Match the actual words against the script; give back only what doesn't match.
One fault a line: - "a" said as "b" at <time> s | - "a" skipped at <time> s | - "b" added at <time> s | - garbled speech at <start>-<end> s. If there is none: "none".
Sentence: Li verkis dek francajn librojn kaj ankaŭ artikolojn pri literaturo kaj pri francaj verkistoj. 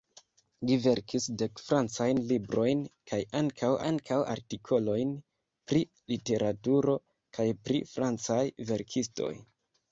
- "ankaŭ" added at 3.9 s